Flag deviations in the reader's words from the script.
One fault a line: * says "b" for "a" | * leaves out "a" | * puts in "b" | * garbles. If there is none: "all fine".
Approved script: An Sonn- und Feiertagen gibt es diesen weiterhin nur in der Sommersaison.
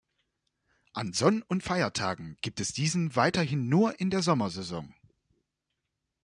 all fine